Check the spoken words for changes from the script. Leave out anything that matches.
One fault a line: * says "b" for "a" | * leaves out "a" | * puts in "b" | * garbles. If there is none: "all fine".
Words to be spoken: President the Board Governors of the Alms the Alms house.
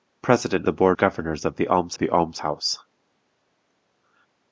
all fine